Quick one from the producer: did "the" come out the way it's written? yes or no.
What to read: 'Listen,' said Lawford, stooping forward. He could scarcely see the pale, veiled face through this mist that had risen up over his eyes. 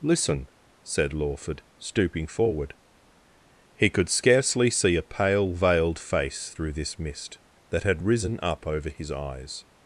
no